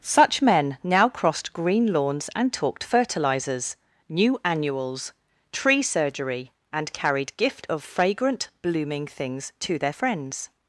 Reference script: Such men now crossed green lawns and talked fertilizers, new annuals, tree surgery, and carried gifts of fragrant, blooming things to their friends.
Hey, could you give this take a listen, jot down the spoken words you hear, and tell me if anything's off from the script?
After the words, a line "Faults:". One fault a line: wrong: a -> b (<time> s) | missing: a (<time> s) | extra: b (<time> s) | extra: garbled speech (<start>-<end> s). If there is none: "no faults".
Such men now crossed green lawns and talked fertilizers, new annuals, tree surgery, and carried gift of fragrant, blooming things to their friends.
Faults:
wrong: gifts -> gift (7.4 s)